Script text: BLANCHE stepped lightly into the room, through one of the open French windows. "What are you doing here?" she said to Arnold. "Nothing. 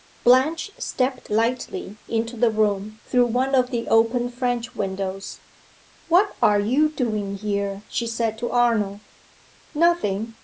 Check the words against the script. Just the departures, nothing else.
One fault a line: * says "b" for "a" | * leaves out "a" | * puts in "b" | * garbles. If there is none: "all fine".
all fine